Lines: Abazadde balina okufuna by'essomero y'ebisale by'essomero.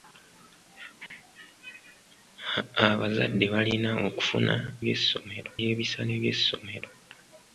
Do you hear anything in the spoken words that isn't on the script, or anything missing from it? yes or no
no